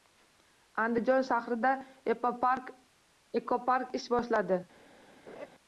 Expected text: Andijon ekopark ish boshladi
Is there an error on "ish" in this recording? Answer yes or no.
no